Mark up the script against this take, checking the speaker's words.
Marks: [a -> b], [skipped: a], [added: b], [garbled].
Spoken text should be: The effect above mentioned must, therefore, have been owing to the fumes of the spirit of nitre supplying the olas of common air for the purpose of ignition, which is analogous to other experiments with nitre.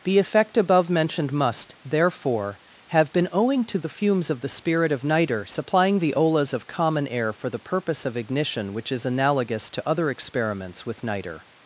The effect above mentioned must, therefore, have been owing to the fumes of the spirit of nitre supplying the olas of common air for the purpose of ignition, which is analogous to other experiments with nitre.